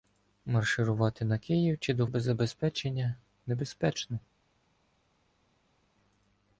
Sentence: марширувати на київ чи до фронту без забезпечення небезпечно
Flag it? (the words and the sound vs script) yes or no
yes